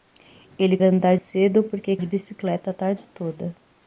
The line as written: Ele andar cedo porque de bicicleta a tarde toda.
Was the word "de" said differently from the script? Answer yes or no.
no